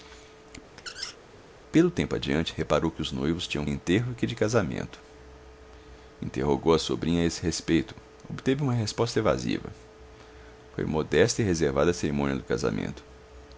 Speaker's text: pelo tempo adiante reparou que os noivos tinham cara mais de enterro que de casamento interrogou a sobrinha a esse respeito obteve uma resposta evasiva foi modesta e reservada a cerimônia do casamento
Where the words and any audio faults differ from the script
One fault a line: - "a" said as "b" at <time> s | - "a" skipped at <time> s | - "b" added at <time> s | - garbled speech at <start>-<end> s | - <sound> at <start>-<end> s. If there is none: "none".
- squeak at 0.8-1.2 s
- "cara mais de" skipped at 3.6 s